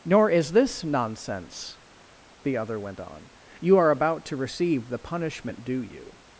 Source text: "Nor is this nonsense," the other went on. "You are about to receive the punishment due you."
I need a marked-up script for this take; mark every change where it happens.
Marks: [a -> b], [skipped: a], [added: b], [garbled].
"Nor is this nonsense," the other went on. "You are about to receive the punishment due you."